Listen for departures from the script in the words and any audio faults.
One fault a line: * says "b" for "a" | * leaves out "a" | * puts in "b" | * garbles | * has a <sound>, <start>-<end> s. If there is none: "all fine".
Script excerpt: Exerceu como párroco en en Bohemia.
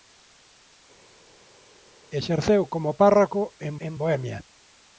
all fine